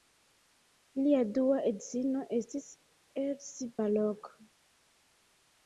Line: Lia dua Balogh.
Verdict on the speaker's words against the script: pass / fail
fail